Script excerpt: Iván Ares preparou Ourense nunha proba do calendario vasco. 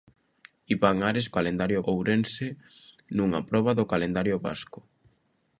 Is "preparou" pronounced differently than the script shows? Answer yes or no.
yes